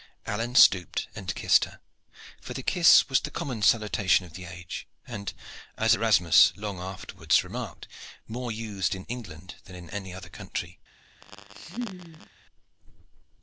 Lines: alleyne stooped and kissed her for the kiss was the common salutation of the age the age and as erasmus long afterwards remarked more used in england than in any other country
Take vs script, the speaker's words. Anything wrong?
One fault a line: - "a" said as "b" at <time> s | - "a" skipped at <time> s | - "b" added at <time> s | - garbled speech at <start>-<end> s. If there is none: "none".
- "the age" skipped at 4.9 s